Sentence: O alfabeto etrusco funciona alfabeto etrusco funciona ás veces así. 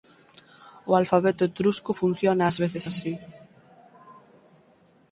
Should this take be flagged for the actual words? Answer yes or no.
yes